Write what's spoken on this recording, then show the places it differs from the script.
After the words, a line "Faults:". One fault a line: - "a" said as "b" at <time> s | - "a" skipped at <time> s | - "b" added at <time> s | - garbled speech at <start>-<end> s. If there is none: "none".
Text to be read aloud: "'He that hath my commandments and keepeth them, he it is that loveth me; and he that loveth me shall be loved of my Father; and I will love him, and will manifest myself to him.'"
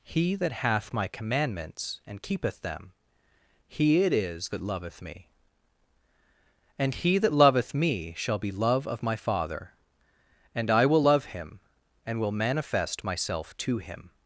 "'He that hath my commandments and keepeth them, he it is that loveth me; and he that loveth me shall be love of my Father; and I will love him, and will manifest myself to him.'"
Faults:
- "loved" said as "love" at 8.5 s